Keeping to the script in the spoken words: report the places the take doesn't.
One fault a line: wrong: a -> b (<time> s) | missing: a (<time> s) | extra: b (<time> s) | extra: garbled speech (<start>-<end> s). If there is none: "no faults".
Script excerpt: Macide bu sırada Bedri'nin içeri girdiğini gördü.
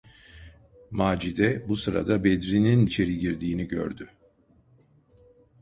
no faults